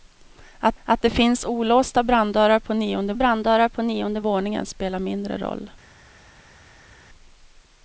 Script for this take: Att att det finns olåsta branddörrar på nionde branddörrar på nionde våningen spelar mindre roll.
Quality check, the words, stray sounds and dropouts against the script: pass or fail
pass